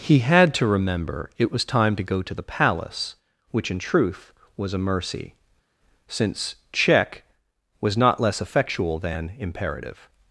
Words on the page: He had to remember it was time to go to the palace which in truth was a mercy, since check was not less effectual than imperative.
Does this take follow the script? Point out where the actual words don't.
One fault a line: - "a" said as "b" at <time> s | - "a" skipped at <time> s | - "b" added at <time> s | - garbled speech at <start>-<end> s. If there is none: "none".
none